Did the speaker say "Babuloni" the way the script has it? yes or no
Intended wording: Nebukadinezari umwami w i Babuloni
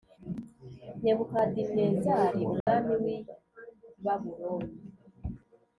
yes